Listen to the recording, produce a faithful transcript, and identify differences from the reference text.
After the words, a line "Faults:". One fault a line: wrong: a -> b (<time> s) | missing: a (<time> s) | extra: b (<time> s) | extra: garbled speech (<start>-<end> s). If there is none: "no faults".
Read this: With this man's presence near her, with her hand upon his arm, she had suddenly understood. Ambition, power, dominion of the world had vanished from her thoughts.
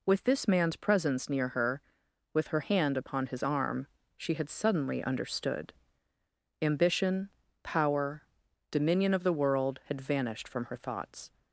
With this man's presence near her, with her hand upon his arm, she had suddenly understood. Ambition, power, dominion of the world had vanished from her thoughts.
Faults:
no faults